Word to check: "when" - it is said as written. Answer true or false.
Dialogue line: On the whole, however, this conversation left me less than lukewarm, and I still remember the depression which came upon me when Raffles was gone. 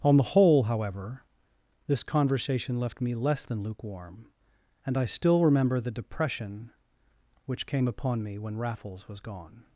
true